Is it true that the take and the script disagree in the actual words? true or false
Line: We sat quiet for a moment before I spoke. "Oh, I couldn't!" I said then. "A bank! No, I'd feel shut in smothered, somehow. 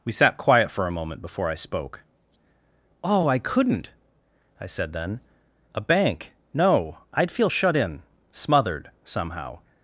false